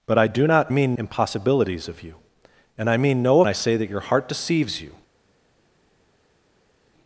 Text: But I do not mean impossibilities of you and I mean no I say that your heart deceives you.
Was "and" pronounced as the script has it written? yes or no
yes